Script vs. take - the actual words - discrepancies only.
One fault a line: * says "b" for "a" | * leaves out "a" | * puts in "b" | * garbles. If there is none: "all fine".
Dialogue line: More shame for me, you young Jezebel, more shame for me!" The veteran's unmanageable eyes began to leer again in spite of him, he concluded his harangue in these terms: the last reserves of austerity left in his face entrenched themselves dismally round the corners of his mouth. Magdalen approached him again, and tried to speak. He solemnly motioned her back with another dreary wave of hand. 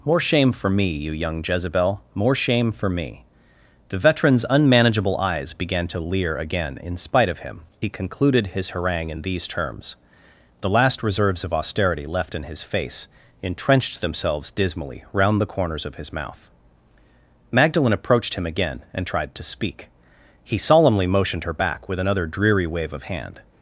all fine